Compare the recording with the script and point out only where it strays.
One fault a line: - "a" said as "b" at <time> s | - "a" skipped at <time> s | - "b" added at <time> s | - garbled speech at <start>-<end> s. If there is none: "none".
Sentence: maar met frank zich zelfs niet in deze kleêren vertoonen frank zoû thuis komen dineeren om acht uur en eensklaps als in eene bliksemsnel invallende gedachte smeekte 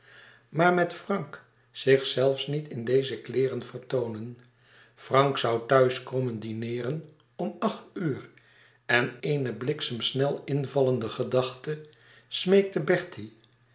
- "eensklaps als in" skipped at 9.2 s